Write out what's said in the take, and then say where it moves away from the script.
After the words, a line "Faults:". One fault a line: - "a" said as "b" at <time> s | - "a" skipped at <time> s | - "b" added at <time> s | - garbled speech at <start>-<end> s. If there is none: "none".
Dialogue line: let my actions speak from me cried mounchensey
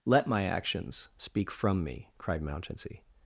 let my actions speak from me cried mounchensey
Faults:
none